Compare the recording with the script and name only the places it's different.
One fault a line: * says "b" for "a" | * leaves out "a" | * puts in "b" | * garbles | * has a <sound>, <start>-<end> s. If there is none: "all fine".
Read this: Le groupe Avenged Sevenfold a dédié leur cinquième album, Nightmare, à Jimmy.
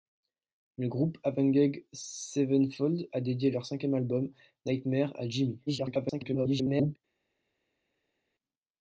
* garbles